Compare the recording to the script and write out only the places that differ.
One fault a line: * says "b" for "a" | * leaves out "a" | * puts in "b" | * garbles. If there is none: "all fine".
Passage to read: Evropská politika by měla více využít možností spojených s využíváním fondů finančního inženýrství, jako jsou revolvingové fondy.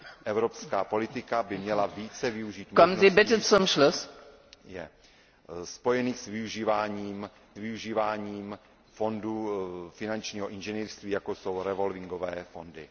* puts in "využíváním"